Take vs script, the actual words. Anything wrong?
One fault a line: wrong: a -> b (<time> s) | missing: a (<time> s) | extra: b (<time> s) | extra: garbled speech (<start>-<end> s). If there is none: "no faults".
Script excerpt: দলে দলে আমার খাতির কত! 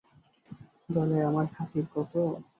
missing: দলে (1.2 s)